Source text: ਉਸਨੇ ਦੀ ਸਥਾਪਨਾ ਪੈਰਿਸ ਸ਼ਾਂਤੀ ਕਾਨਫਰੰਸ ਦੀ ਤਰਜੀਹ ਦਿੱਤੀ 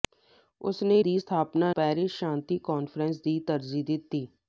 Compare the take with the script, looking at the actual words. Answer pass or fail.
pass